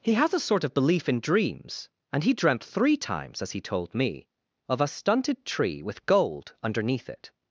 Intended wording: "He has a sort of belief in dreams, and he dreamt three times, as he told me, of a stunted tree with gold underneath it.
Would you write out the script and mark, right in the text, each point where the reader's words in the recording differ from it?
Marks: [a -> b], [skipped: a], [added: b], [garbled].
"He has a sort of belief in dreams, and he dreamt three times, as he told me, of a stunted tree with gold underneath it.